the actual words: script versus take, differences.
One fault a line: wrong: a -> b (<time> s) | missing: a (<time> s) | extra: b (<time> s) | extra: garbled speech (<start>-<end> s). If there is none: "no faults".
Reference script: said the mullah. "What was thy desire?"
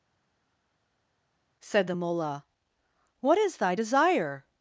wrong: was -> is (3.4 s)